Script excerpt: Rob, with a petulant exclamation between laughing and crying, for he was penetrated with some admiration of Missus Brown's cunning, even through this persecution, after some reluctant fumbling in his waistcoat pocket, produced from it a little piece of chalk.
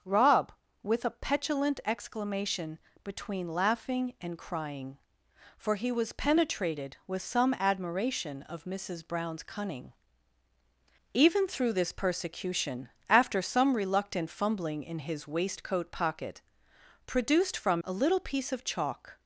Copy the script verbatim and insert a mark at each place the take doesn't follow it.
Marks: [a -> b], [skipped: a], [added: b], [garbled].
Rob, with a petulant exclamation between laughing and crying, for he was penetrated with some admiration of Missus Brown's cunning, even through this persecution, after some reluctant fumbling in his waistcoat pocket, produced from [skipped: it] a little piece of chalk.